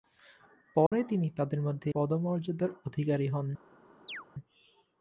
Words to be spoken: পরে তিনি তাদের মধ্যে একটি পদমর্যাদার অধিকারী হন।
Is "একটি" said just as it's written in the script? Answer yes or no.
no